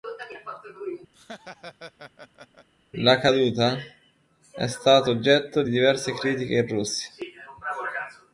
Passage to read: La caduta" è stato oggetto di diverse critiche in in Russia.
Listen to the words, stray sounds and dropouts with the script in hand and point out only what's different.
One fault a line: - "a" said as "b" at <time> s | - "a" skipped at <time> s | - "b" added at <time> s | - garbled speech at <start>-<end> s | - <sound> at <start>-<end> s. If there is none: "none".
- laugh at 1.1-2.7 s
- "in" skipped at 6.7 s